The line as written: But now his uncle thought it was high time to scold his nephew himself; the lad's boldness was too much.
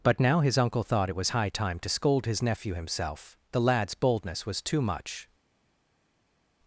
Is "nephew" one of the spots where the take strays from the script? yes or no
no